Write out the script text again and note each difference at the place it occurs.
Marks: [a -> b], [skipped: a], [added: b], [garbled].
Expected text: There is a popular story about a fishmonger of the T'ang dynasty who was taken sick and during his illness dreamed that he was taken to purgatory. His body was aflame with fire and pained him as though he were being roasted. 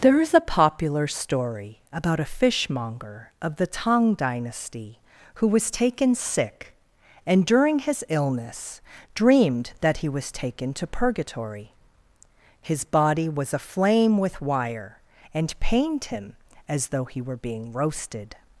There is a popular story about a fishmonger of the T'ang dynasty who was taken sick and during his illness dreamed that he was taken to purgatory. His body was aflame with [fire -> wire] and pained him as though he were being roasted.